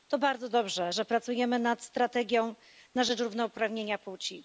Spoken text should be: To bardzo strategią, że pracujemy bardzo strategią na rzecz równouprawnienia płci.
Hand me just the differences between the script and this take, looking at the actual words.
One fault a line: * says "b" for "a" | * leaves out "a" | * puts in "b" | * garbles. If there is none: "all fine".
* says "dobrze" for "strategią"
* says "nad" for "bardzo"